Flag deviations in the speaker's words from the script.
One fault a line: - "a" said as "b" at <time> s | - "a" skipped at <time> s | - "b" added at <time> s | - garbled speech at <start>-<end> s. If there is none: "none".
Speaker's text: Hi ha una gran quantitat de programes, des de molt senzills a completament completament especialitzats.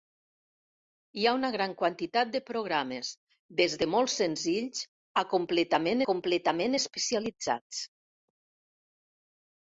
none